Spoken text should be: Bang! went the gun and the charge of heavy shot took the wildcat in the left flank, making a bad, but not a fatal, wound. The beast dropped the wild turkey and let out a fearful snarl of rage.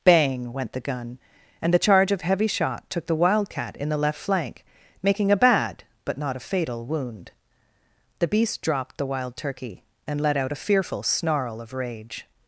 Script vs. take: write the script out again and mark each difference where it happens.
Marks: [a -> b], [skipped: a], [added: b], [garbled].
Bang! went the gun and the charge of heavy shot took the wildcat in the left flank, making a bad, but not a fatal, wound. The beast dropped the wild turkey and let out a fearful snarl of rage.